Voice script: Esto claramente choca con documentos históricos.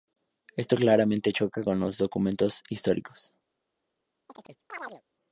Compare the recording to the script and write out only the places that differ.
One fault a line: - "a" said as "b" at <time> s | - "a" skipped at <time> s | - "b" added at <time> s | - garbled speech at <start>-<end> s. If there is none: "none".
- "los" added at 1.8 s